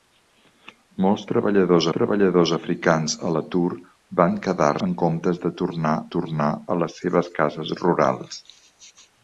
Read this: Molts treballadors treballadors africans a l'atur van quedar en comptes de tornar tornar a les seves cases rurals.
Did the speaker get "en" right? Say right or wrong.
right